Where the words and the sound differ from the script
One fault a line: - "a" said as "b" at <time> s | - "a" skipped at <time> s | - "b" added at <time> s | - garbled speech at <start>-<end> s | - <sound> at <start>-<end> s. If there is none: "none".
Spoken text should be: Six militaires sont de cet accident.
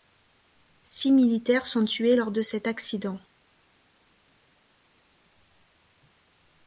- "tués lors" added at 1.9 s